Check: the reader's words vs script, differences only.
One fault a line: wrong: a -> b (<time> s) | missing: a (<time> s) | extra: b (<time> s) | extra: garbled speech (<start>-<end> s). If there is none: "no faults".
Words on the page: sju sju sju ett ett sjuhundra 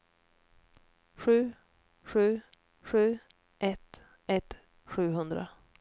no faults